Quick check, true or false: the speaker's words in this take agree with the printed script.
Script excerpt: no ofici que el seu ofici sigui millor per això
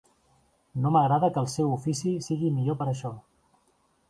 false